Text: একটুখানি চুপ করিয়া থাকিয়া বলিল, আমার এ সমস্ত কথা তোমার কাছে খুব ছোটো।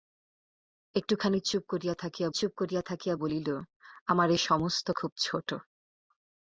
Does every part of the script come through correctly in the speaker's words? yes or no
no